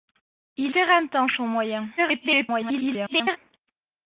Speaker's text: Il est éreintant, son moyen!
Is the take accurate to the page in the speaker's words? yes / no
no